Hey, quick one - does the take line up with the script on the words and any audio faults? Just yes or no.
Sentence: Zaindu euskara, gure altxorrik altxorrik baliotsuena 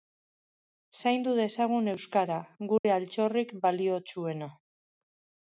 no